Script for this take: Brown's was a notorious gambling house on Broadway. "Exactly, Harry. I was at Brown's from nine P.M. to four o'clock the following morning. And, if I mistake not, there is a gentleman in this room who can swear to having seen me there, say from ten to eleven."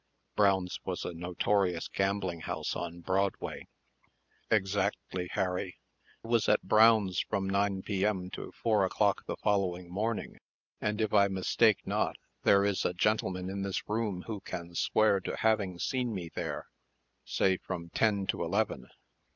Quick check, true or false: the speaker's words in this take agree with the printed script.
false